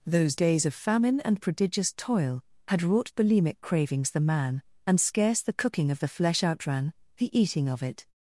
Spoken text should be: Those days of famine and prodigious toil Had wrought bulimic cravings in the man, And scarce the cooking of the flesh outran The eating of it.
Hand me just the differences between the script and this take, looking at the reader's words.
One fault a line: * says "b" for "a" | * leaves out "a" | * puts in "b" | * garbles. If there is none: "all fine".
* leaves out "in"